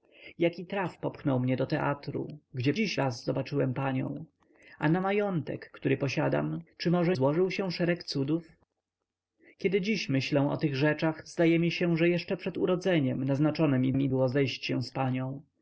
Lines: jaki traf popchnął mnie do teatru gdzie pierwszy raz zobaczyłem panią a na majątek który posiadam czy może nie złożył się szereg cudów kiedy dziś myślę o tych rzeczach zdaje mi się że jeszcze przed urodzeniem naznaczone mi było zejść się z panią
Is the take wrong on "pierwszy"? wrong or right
wrong